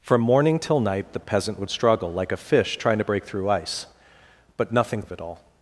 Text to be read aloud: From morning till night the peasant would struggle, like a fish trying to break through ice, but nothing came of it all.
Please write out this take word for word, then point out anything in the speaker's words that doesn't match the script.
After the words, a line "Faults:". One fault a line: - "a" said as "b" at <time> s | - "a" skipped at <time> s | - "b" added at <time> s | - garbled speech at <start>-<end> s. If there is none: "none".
From morning till night the peasant would struggle, like a fish trying to break through ice, but nothing of it all.
Faults:
- "came" skipped at 5.0 s